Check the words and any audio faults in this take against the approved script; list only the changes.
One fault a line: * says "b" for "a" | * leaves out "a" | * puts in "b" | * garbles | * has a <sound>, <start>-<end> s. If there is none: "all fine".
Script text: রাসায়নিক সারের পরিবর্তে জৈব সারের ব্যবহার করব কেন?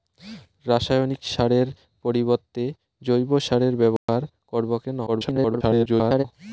* has a dropout, 4.0-4.1 s
* garbles